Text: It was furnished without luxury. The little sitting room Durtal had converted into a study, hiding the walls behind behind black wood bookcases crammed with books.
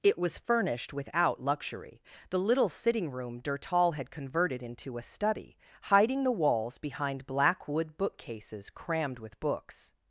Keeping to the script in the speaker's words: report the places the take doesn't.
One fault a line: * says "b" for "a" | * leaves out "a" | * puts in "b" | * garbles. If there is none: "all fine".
* leaves out "behind"